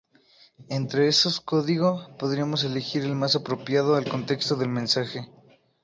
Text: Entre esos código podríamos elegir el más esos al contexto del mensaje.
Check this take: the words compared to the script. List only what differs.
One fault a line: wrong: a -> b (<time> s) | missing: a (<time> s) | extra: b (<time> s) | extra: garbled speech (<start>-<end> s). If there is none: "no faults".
wrong: esos -> apropiado (3.4 s)